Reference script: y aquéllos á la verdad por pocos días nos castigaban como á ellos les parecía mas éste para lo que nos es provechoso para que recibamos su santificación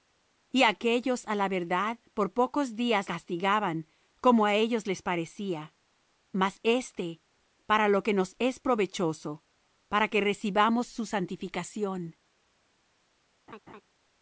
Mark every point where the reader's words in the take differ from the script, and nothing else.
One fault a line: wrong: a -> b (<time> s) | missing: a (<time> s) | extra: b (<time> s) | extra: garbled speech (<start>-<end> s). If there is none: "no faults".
missing: nos (3.0 s)